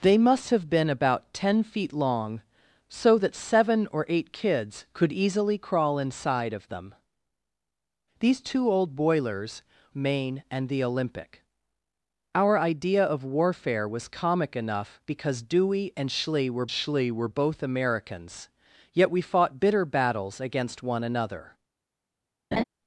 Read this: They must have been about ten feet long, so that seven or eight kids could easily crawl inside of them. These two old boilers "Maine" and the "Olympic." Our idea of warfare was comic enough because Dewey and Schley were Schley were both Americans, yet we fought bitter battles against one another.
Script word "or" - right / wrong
right